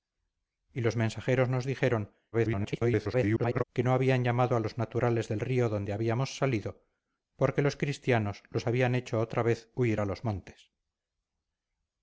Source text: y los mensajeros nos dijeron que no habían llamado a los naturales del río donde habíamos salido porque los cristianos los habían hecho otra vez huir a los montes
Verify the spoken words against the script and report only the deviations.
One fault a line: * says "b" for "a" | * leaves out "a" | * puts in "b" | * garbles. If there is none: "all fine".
* garbles